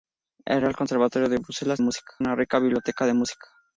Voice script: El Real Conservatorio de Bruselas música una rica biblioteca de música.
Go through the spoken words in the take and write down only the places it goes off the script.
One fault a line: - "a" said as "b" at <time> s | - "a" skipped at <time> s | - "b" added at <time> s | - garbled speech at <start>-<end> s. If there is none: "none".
none